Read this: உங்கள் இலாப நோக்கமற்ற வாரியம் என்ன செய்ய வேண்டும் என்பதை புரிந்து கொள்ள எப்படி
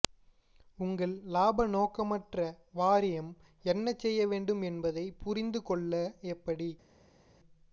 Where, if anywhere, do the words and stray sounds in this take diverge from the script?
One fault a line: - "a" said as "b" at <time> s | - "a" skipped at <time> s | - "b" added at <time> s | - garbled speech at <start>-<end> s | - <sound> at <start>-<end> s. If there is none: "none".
none